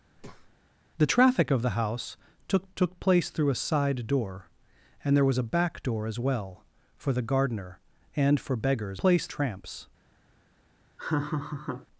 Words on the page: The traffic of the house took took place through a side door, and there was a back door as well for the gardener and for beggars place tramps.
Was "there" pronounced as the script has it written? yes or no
yes